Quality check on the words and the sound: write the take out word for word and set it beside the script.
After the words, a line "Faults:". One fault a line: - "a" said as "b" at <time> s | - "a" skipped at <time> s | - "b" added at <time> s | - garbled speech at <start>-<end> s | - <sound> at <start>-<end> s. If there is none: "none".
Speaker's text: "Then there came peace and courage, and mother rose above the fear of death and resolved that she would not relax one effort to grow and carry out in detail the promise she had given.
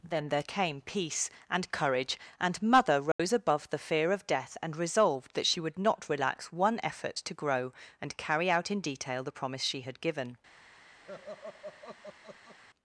"Then there came peace and courage, and mother rose above the fear of death and resolved that she would not relax one effort to grow and carry out in detail the promise she had given.
Faults:
- dropout at 3.1-3.2 s
- laugh at 11.0-12.6 s